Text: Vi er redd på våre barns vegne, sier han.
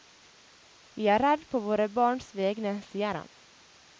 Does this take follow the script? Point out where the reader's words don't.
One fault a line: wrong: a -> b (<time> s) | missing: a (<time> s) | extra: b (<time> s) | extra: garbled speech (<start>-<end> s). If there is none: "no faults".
no faults